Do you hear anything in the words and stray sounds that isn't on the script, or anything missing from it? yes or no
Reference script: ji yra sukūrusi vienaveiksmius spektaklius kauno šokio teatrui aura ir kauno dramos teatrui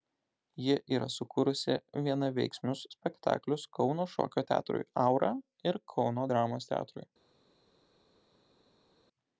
no